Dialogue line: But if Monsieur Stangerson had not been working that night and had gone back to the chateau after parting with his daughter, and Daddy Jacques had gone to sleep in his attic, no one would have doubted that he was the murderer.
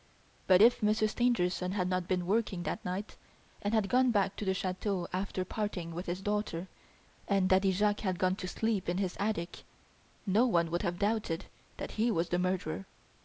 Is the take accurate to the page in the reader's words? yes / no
yes